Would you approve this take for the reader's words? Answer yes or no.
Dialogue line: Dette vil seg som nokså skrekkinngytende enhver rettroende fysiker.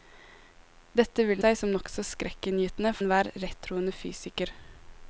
yes